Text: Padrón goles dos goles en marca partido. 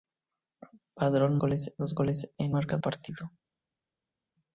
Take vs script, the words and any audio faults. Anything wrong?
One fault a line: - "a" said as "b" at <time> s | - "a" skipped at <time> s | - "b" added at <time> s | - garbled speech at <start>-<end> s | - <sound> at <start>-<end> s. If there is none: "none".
none